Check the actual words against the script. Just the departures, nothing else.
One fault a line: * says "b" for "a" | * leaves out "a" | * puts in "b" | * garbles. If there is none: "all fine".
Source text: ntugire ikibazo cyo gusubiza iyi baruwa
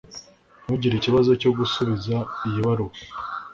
all fine